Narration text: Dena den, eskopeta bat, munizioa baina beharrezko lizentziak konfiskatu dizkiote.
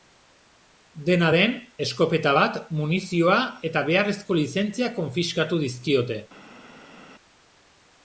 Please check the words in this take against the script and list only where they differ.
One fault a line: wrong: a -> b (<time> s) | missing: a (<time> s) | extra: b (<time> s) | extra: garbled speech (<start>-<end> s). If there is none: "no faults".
wrong: baina -> eta (3.7 s)